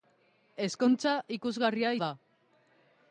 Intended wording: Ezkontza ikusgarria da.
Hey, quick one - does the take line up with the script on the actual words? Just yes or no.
yes